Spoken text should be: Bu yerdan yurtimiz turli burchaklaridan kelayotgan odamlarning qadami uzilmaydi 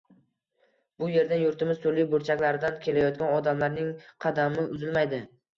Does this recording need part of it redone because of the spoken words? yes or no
no